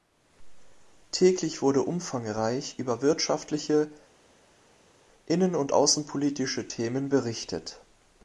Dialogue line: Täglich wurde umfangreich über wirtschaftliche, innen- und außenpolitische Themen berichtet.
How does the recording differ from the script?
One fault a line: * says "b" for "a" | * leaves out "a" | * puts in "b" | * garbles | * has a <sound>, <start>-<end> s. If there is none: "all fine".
all fine